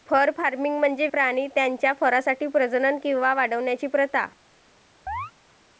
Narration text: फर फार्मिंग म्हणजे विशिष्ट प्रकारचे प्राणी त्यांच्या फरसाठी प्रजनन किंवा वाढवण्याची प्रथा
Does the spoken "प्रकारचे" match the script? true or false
false